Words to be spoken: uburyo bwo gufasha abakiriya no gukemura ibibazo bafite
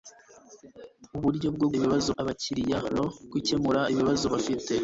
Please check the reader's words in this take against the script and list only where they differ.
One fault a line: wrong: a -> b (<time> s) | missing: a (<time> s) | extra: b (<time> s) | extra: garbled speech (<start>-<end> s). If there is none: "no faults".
wrong: gufasha -> ibibazo (1.8 s)